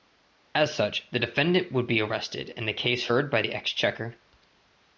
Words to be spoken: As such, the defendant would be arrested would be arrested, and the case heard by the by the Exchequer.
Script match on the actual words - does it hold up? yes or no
no